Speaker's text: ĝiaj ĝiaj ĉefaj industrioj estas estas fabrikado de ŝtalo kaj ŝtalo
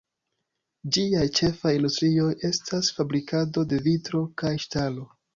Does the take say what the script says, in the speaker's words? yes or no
no